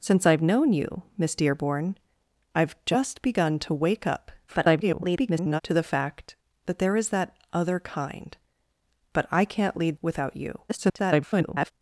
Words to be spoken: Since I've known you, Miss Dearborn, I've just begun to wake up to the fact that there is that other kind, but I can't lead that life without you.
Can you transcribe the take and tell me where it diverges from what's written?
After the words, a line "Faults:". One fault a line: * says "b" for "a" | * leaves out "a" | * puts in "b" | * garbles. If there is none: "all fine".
Since I've known you, Miss Dearborn, I've just begun to wake up [garbled] to the fact that there is that other kind, but I can't lead without you. [garbled]
Faults:
* garbles
* leaves out "that life"
* garbles